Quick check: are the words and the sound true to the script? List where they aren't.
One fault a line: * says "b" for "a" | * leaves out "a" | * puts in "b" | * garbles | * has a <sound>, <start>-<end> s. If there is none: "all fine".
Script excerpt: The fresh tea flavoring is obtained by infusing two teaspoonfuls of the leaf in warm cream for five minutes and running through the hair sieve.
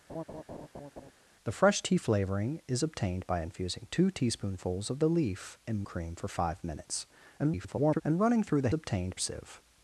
* has a laugh, 0.1-1.1 s
* leaves out "warm"
* garbles
* says "obtained" for "hair"